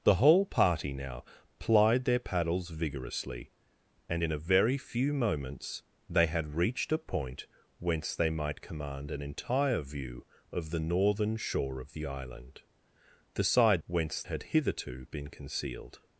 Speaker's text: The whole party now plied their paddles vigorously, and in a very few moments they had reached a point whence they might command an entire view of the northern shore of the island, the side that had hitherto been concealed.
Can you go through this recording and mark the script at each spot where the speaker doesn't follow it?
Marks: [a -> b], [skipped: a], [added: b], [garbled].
The whole party now plied their paddles vigorously, and in a very few moments they had reached a point whence they might command an entire view of the northern shore of the island, the side [that -> whence] had hitherto been concealed.